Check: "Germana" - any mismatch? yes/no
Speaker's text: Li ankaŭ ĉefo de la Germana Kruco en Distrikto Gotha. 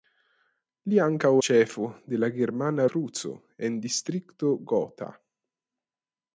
no